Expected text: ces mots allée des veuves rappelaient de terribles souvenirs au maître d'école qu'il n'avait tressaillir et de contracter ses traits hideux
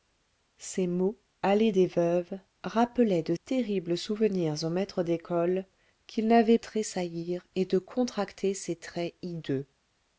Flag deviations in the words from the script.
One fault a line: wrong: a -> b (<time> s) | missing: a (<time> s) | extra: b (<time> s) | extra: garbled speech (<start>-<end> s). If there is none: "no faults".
no faults